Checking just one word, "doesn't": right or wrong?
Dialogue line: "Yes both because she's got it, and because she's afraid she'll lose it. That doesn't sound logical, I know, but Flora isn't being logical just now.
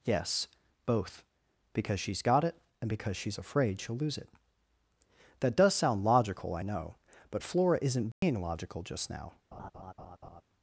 wrong